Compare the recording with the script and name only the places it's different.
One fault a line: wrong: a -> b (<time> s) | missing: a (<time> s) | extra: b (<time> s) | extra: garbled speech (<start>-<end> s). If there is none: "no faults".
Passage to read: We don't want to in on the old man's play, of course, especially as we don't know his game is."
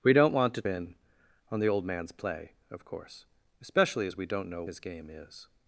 no faults